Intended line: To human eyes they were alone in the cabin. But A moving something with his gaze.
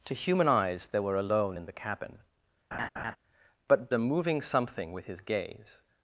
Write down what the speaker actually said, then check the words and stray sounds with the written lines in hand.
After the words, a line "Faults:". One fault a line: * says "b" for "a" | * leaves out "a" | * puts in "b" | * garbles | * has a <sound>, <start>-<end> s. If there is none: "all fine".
To human eyes they were alone in the cabin. But A moving something with his gaze.
Faults:
* has a laugh, 2.7-3.2 s